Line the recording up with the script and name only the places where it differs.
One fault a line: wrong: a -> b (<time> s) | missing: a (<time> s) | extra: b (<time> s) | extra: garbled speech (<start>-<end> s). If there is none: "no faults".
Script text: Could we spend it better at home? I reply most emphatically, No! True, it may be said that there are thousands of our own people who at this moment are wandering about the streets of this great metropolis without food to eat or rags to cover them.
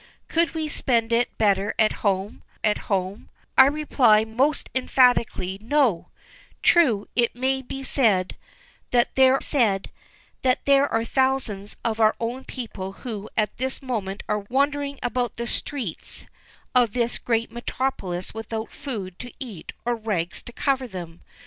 extra: at home (2.6 s)
extra: said that there (9.4 s)